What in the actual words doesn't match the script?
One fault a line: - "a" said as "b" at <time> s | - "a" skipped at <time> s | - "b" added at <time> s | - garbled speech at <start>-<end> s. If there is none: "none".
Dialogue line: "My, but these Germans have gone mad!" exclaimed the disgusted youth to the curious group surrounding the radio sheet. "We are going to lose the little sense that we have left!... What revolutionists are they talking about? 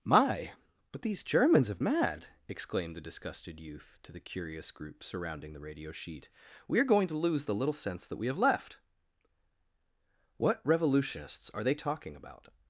- "gone" skipped at 1.8 s